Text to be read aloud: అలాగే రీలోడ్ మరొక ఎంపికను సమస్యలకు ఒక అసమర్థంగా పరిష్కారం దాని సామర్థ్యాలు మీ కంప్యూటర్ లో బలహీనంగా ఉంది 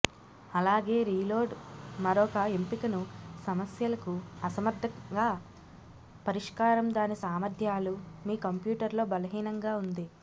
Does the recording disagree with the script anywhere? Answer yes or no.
yes